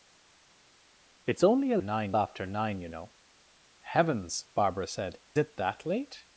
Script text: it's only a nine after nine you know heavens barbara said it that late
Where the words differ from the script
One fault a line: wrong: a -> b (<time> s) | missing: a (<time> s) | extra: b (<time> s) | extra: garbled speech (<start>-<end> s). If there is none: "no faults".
no faults